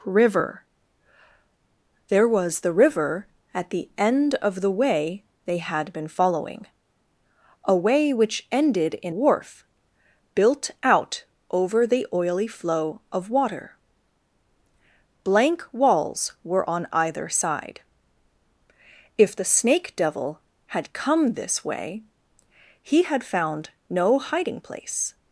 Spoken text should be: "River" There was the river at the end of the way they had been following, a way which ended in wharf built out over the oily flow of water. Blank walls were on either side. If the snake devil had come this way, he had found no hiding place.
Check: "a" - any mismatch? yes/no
no